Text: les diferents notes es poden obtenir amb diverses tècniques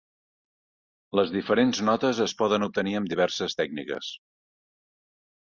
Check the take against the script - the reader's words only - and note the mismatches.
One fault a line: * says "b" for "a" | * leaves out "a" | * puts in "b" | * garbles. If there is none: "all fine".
all fine